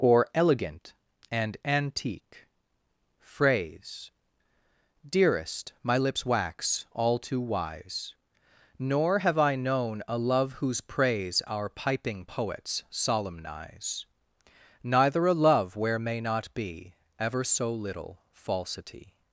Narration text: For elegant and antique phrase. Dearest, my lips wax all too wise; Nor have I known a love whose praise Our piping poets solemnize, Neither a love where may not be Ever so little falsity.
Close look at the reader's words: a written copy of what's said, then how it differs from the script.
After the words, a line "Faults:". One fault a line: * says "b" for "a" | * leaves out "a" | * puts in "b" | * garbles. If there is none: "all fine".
Or elegant and antique phrase. Dearest, my lips wax all too wise; Nor have I known a love whose praise Our piping poets solemnize, Neither a love where may not be Ever so little falsity.
Faults:
* says "Or" for "For"